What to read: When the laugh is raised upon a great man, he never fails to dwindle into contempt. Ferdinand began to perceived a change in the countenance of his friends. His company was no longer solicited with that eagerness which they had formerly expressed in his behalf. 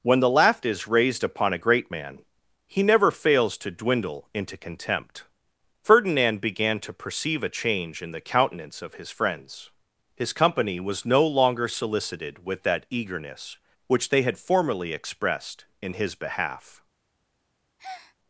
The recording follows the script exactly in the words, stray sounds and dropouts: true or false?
false